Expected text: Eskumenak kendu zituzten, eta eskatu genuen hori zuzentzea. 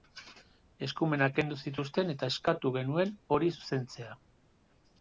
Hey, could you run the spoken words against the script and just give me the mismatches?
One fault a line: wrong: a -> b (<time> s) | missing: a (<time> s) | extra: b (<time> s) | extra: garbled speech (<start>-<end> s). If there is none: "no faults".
no faults